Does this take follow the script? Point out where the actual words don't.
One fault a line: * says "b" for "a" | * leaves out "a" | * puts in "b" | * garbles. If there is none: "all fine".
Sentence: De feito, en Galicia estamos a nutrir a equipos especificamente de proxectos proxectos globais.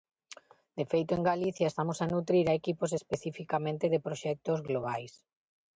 * leaves out "proxectos"